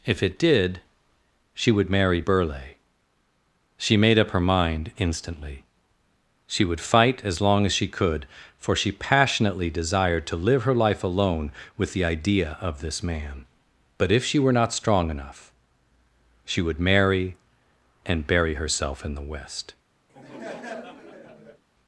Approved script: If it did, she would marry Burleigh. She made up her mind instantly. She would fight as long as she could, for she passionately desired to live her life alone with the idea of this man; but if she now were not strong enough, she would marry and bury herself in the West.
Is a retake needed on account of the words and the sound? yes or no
yes